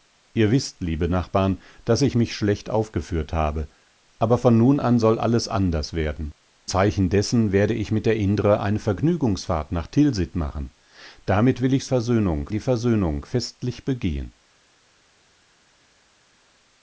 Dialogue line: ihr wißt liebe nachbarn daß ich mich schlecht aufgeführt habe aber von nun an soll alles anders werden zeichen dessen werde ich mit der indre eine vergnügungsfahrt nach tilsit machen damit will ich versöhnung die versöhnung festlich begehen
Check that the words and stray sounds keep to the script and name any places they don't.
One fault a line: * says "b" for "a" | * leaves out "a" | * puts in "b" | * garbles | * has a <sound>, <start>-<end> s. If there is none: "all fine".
all fine